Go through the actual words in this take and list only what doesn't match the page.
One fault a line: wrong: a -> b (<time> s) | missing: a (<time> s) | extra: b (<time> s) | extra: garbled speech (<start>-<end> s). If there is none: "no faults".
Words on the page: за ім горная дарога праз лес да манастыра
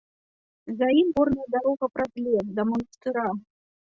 no faults